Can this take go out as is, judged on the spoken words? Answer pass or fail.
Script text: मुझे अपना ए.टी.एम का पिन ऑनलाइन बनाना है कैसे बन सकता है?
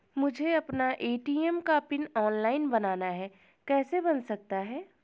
pass